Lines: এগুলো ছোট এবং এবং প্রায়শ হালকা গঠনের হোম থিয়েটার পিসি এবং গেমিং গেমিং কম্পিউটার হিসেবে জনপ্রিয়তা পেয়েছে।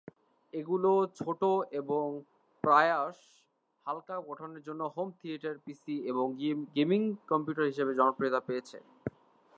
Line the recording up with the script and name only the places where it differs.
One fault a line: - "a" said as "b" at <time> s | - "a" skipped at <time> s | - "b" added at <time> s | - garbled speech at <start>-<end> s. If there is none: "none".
- "এবং" skipped at 2.0 s
- "জন্য" added at 4.7 s
- "গেমিং" skipped at 7.0 s